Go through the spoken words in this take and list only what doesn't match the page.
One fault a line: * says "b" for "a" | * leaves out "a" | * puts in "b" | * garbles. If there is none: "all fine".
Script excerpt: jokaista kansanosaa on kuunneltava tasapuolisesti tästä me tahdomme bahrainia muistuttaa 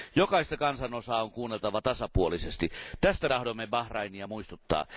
* leaves out "me"